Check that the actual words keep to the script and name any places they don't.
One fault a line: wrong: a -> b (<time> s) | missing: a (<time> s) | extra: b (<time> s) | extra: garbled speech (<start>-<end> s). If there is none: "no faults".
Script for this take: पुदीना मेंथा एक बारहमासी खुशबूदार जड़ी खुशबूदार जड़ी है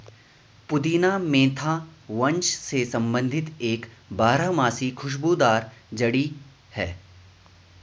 extra: वंश से संबंधित (2.1 s)
missing: खुशबूदार जड़ी (6.3 s)